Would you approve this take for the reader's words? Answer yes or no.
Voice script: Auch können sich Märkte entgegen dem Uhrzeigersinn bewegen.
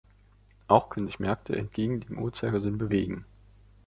yes